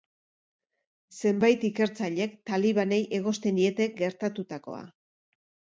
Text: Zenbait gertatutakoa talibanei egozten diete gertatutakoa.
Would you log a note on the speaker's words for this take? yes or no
yes